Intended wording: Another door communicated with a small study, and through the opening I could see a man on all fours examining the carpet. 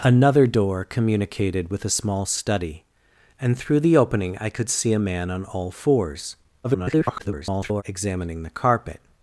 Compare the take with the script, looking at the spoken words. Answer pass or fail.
fail